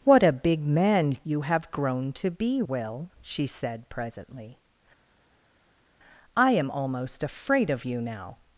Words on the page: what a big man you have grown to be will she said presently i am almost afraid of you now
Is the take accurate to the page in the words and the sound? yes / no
yes